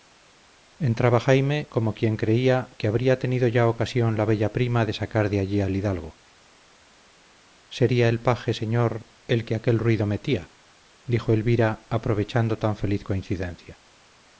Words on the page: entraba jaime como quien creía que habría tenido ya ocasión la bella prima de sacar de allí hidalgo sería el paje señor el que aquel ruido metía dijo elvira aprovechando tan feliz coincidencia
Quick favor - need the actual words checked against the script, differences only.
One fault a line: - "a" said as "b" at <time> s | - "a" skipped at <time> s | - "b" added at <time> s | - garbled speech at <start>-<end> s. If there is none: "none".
- "al" added at 5.6 s